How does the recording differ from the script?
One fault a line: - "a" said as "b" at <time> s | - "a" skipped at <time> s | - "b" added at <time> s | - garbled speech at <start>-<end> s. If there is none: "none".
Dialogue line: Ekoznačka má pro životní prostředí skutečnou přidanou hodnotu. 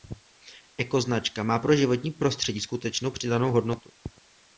none